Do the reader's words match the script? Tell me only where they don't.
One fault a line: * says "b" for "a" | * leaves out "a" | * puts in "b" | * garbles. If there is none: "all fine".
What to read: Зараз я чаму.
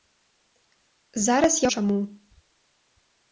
all fine